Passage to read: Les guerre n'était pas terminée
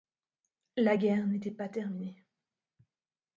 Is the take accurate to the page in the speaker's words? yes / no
no